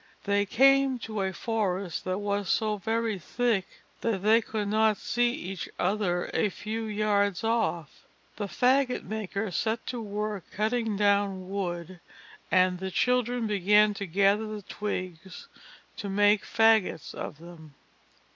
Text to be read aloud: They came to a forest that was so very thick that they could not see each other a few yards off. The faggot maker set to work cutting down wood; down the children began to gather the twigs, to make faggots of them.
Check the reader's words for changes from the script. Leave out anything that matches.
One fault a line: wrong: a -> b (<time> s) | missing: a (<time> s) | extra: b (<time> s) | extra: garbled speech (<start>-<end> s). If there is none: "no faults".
wrong: down -> and (12.5 s)